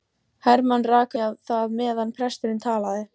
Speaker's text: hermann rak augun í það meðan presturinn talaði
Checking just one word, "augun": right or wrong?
wrong